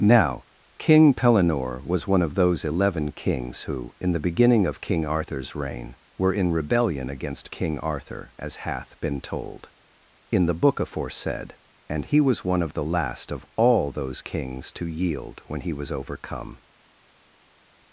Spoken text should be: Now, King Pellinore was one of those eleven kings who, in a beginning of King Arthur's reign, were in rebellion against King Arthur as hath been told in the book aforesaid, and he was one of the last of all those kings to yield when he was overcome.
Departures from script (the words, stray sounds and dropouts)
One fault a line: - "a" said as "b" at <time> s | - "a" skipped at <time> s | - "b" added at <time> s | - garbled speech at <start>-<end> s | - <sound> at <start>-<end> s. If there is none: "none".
- "a" said as "the" at 4.1 s